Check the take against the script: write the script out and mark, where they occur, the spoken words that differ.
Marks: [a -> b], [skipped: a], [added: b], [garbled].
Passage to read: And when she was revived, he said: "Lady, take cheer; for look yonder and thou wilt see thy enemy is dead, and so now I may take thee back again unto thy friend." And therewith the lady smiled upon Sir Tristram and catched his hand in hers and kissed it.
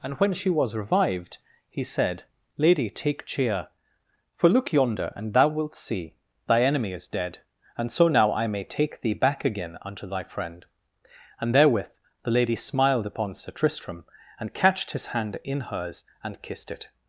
And when she was revived, he said: "Lady, take cheer; for look yonder and thou wilt see thy enemy is dead, and so now I may take thee back again unto thy friend." And therewith the lady smiled upon Sir Tristram and catched his hand in hers and kissed it.